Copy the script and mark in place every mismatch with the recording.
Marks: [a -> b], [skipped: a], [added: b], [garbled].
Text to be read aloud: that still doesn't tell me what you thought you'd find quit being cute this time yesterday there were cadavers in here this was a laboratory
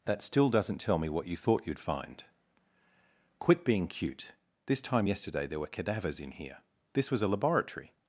that still doesn't tell me what you thought you'd find quit being cute this time yesterday there were cadavers in here this was a laboratory